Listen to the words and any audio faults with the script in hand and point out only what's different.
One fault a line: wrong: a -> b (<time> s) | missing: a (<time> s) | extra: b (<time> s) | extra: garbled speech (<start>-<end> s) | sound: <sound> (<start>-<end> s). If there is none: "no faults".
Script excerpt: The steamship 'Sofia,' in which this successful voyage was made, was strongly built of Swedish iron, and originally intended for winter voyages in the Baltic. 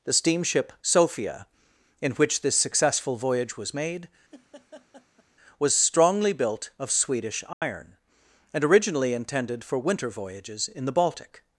sound: laugh (4.3-5.2 s)
sound: dropout (7.5-7.6 s)